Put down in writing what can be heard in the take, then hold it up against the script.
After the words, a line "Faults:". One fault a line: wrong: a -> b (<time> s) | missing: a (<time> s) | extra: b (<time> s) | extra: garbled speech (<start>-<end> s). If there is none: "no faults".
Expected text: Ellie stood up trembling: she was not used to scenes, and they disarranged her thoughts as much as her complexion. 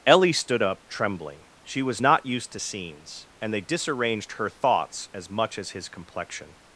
Ellie stood up trembling: she was not used to scenes, and they disarranged her thoughts as much as his complexion.
Faults:
wrong: her -> his (5.7 s)